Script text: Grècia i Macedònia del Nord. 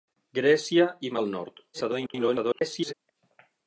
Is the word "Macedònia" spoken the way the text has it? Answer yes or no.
no